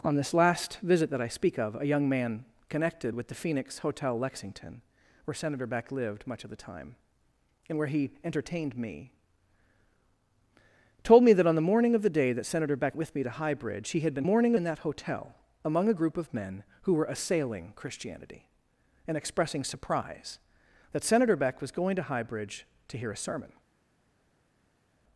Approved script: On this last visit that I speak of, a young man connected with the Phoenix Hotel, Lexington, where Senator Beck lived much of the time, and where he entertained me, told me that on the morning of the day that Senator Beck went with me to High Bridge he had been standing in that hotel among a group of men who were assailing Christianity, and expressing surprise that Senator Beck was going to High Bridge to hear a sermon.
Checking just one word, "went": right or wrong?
wrong